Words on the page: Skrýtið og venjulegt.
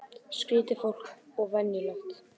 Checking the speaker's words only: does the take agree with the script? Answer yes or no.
no